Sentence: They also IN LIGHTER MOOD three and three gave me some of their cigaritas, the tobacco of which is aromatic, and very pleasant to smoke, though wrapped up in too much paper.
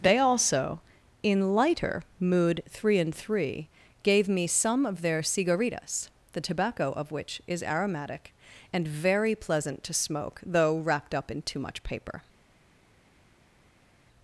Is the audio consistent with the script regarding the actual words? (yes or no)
yes